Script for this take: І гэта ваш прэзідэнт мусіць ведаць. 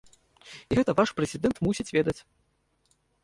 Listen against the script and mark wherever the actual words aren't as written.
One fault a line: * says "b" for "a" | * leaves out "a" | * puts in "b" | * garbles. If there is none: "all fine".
all fine